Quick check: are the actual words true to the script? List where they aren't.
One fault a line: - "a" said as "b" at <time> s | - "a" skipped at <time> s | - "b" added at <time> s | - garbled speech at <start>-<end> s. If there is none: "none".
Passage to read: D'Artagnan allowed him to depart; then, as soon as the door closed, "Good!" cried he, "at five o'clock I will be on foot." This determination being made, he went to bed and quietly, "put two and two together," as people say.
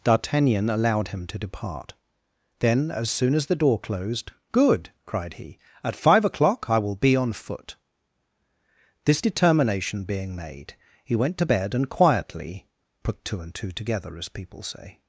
none